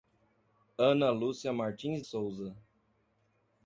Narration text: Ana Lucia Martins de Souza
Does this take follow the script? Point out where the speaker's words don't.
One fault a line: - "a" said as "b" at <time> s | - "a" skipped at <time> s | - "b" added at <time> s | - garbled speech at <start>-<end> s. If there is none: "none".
- "de" skipped at 2.0 s